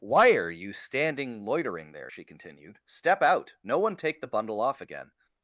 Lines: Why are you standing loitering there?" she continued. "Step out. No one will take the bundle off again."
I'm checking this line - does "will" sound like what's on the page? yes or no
no